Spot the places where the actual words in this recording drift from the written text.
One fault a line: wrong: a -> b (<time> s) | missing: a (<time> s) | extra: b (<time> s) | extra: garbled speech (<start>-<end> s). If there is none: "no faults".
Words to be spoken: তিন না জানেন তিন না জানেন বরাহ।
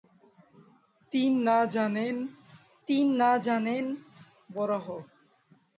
no faults